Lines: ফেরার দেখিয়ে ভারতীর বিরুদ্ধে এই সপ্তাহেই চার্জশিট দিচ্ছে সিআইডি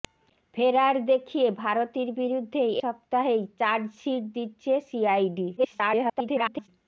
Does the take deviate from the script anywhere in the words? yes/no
yes